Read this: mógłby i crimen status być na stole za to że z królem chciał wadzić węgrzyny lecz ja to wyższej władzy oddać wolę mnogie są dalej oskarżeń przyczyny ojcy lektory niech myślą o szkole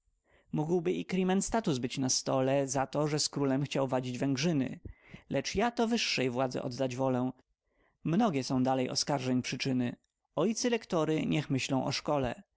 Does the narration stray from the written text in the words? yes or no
no